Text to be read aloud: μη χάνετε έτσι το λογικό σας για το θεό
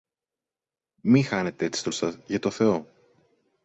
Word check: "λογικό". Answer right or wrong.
wrong